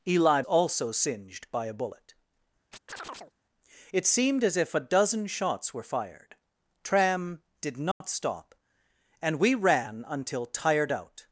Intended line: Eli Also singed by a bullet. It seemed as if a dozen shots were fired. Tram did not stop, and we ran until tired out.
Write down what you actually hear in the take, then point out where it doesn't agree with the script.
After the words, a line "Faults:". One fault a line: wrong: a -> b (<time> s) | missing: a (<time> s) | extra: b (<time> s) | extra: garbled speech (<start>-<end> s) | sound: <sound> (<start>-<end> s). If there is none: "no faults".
Eli Also singed by a bullet. It seemed as if a dozen shots were fired. Tram did not stop, and we ran until tired out.
Faults:
sound: chirp (2.7-3.3 s)
sound: dropout (7.9-8.0 s)